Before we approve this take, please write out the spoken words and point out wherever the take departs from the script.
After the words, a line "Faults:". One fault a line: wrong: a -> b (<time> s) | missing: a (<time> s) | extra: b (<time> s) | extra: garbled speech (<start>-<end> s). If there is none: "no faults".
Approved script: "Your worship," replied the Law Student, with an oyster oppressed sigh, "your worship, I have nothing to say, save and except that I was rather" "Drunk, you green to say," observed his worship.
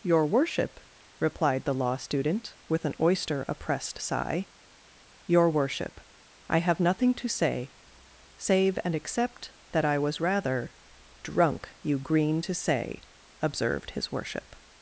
"Your worship," replied the Law Student, with an oyster oppressed sigh, "your worship, I have nothing to say, save and except that I was rather" "Drunk, you green to say," observed his worship.
Faults:
no faults